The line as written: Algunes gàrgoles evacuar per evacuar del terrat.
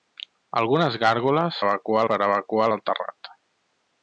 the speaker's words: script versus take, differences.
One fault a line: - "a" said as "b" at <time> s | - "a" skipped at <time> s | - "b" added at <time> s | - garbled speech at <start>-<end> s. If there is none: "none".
none